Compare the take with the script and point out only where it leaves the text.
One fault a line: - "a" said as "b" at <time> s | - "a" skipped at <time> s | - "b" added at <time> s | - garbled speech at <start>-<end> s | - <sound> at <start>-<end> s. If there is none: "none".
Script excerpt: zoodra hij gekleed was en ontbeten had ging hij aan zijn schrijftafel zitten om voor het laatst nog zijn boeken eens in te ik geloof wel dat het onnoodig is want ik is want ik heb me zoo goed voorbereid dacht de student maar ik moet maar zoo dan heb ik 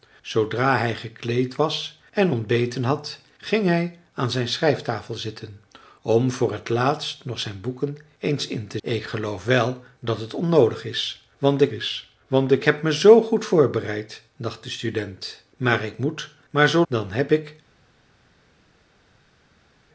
none